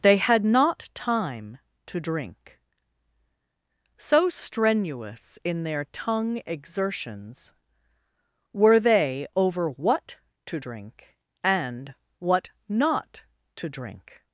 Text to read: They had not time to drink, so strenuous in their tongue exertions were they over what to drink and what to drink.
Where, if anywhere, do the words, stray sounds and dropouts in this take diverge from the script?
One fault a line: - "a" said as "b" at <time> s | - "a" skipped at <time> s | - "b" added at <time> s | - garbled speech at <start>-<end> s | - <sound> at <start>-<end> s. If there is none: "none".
- "not" added at 12.7 s